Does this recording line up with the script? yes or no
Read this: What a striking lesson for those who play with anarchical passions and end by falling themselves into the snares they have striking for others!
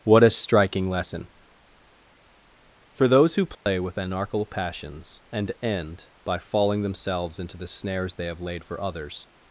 no